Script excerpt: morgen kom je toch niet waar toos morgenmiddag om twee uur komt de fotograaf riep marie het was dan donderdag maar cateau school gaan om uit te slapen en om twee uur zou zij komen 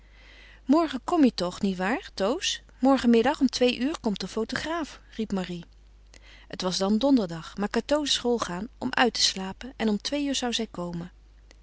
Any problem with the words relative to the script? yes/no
no